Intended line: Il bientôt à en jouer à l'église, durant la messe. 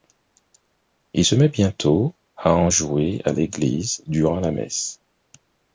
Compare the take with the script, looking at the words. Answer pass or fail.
fail